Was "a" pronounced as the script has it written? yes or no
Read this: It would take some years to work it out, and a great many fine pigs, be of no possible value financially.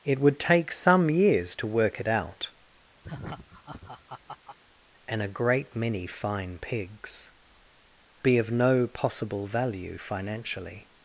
yes